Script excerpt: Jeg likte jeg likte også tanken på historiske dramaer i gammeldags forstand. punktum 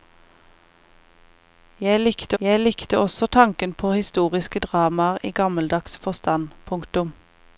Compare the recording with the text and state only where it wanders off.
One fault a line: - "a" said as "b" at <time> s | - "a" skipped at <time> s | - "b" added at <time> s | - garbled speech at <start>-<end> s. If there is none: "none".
none